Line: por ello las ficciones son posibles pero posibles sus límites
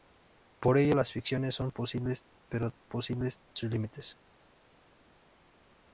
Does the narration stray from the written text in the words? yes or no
no